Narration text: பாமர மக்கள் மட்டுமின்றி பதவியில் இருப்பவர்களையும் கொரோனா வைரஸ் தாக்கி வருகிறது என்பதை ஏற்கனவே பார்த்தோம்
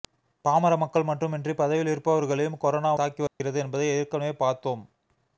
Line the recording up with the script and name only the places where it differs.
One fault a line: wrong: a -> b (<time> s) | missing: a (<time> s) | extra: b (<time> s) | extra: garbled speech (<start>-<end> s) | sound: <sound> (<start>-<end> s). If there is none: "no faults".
missing: வைரஸ் (2.9 s)
sound: dropout (3.3-3.4 s)